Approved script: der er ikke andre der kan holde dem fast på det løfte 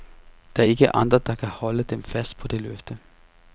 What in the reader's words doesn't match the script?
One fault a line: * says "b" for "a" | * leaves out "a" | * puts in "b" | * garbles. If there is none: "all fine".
all fine